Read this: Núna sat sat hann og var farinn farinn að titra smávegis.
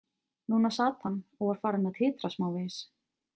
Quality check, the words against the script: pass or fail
fail